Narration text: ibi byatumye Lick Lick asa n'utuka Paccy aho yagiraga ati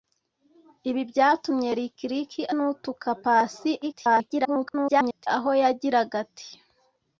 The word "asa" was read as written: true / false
false